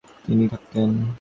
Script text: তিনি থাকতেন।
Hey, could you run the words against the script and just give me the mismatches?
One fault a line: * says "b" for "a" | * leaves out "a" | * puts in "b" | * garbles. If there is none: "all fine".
all fine